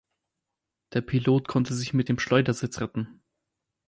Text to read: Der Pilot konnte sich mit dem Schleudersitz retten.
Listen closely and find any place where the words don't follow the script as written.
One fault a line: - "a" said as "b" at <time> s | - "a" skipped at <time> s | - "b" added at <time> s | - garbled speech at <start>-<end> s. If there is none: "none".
none